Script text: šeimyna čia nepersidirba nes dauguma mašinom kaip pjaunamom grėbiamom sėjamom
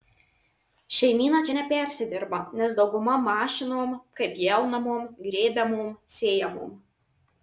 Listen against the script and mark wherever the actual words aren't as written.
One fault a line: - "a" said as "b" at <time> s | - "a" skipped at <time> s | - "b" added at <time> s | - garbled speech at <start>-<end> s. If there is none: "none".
none